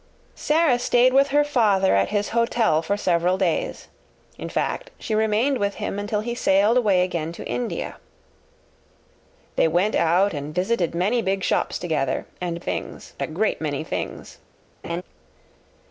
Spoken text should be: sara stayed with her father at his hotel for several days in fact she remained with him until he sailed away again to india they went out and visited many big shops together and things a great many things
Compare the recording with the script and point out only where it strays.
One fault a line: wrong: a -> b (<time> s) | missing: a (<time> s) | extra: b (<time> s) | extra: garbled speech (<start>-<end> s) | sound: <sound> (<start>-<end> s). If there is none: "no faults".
sound: laugh (14.8-15.0 s)